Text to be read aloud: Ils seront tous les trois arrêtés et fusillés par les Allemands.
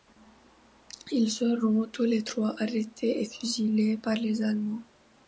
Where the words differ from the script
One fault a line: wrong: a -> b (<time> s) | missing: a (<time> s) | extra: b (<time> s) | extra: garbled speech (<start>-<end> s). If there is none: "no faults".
no faults